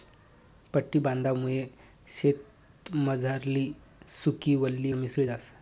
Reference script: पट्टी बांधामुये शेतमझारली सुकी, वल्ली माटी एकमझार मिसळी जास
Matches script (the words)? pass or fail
fail